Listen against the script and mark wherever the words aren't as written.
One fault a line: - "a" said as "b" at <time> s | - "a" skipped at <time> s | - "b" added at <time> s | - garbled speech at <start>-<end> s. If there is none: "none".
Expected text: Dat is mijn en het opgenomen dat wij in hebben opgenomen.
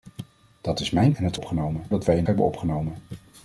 none